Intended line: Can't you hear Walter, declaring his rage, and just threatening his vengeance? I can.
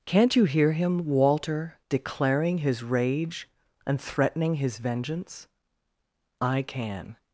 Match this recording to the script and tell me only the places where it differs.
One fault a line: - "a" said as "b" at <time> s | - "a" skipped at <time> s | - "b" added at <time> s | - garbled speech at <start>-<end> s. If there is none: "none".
- "him" added at 0.7 s
- "just" skipped at 4.0 s